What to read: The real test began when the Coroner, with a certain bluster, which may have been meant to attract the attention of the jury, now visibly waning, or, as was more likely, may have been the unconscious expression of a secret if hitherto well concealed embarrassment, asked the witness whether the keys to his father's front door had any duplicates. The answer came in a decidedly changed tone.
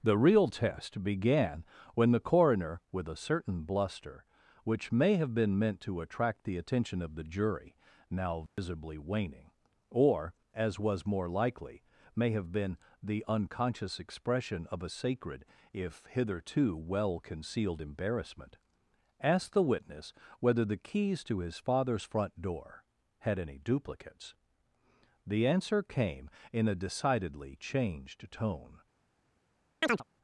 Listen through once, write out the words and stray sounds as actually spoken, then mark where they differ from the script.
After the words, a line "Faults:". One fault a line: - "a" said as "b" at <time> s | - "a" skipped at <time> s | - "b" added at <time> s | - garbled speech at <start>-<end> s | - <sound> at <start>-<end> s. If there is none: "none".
The real test began when the Coroner, with a certain bluster, which may have been meant to attract the attention of the jury, now visibly waning, or, as was more likely, may have been the unconscious expression of a sacred if hitherto well concealed embarrassment, asked the witness whether the keys to his father's front door had any duplicates. The answer came in a decidedly changed tone.
Faults:
- dropout at 8.5-8.6 s
- "secret" said as "sacred" at 14.9 s
- chirp at 29.8-30.0 s